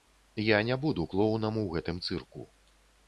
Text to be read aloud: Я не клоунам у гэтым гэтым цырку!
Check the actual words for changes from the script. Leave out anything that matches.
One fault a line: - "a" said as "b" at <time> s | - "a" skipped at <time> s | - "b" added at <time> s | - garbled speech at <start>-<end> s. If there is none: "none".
- "буду" added at 0.8 s
- "гэтым" skipped at 2.0 s